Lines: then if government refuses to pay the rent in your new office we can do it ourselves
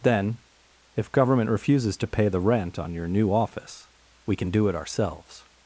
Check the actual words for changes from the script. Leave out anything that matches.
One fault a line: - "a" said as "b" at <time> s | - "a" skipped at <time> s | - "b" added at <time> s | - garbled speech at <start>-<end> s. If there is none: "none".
- "in" said as "on" at 2.8 s